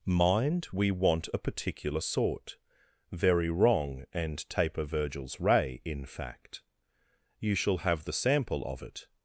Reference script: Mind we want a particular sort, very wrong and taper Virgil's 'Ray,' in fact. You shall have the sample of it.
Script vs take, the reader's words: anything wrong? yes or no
no